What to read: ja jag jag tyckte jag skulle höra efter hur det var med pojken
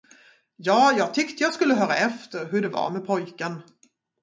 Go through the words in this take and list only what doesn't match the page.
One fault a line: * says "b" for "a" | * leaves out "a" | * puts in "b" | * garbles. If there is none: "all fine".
* leaves out "jag"